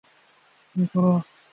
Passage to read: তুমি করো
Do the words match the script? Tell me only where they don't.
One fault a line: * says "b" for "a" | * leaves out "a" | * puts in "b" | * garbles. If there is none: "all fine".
all fine